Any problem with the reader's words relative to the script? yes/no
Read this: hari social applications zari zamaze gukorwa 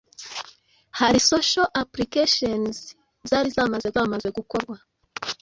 yes